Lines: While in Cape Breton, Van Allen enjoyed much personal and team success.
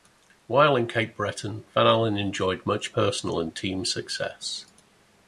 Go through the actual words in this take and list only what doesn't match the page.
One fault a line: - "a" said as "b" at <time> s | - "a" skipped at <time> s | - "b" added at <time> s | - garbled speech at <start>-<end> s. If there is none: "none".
none